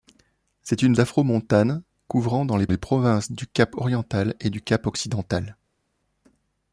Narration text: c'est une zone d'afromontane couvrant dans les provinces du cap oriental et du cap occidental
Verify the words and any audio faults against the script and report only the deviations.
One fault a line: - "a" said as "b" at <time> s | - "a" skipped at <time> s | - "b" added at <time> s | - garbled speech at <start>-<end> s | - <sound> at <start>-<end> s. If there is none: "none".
- "zone" skipped at 0.9 s
- "les" added at 2.7 s